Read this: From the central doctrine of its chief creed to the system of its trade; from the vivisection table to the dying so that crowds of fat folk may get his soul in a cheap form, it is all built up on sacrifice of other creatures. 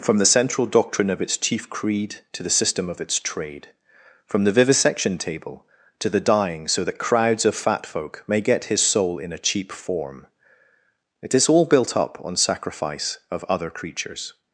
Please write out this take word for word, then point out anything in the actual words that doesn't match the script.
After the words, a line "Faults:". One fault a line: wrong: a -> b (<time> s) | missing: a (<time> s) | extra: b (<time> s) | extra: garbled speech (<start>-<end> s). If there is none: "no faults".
From the central doctrine of its chief creed to the system of its trade; from the vivisection table to the dying so that crowds of fat folk may get his soul in a cheap form, it is all built up on sacrifice of other creatures.
Faults:
no faults